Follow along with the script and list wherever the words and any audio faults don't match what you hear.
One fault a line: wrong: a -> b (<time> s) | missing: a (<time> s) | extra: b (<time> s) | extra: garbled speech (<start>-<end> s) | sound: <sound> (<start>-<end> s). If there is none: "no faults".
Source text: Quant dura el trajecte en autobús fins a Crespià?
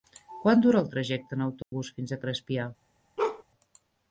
sound: dropout (1.6-1.7 s)
sound: bark (3.2-3.4 s)